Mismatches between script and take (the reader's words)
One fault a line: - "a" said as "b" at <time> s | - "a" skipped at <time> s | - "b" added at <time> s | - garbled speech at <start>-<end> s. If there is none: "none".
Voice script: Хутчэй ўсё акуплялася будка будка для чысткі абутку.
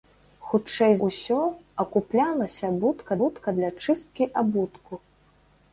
none